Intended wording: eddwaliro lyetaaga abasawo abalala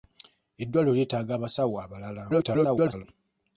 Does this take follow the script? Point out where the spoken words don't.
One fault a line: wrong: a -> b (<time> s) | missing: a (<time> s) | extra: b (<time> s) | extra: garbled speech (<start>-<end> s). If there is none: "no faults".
extra: garbled speech (2.3-3.0 s)